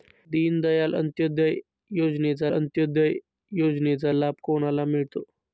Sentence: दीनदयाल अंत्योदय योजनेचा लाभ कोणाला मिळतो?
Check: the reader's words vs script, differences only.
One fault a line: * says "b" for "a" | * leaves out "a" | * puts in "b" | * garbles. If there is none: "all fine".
* puts in "अंत्योदय योजनेचा"